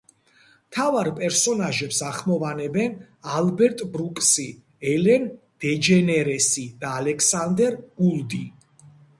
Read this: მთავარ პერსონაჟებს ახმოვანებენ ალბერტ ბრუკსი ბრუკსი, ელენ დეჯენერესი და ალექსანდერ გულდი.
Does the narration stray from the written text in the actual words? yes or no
yes